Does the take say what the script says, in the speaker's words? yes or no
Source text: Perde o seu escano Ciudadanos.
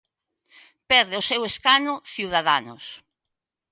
yes